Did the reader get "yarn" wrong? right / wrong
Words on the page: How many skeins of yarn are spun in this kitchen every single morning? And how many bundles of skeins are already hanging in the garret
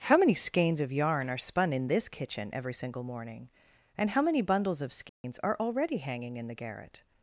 right